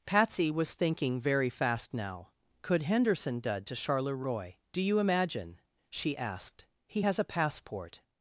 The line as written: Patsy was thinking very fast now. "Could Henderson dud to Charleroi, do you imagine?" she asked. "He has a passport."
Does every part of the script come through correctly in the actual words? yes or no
yes